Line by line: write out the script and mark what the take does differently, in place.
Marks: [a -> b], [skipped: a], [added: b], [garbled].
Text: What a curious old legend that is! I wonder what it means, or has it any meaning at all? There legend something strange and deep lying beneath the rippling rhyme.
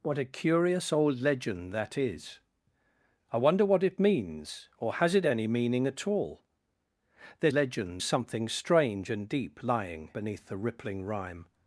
What a curious old legend that is! I wonder what it means, or has it any meaning at all? There legend something strange and deep lying beneath the rippling rhyme.